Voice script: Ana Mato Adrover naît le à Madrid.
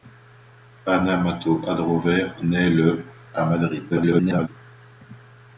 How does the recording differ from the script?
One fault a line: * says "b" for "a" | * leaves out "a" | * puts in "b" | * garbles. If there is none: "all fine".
* garbles